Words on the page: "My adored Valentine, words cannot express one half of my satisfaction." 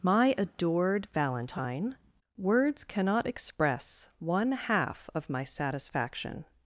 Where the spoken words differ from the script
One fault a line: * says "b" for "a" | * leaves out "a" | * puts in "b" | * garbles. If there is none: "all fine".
all fine